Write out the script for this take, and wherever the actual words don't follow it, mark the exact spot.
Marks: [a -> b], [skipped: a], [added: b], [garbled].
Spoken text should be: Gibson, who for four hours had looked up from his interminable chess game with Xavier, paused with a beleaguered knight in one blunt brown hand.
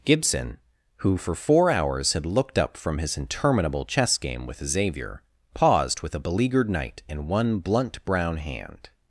Gibson, who for four hours had looked up from his interminable chess game with Xavier, paused with a beleaguered knight in one blunt brown hand.